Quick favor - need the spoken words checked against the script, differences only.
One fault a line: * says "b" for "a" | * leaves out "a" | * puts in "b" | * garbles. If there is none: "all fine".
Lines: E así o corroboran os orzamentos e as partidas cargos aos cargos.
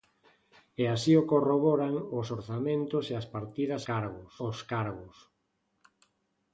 all fine